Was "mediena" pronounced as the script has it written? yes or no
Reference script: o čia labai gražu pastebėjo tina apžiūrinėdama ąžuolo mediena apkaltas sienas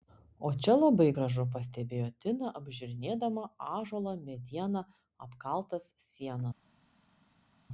yes